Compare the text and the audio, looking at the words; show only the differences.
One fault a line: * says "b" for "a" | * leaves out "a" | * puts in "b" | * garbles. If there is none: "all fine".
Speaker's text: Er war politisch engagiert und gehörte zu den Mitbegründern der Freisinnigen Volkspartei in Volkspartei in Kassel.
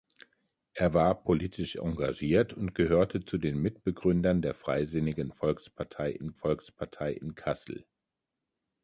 all fine